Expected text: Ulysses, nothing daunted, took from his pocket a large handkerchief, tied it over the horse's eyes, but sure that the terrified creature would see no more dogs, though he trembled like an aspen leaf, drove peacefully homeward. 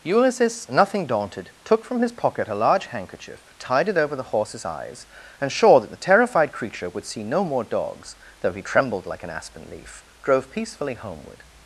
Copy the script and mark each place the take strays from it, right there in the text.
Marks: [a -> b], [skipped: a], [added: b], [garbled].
Ulysses, nothing daunted, took from his pocket a large handkerchief, tied it over the horse's eyes, [but -> and] sure that the terrified creature would see no more dogs, though he trembled like an aspen leaf, drove peacefully homeward.